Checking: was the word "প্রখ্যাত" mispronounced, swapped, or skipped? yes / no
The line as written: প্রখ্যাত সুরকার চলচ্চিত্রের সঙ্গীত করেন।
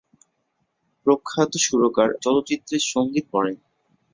no